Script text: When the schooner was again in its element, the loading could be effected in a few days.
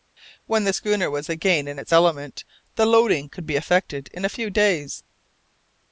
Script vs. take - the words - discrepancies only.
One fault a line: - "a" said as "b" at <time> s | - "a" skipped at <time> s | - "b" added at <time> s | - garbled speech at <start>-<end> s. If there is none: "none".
none